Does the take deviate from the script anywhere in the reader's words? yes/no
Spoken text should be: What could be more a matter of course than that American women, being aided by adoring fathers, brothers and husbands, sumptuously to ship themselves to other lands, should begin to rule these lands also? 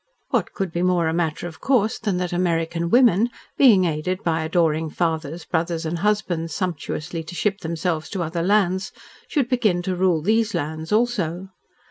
no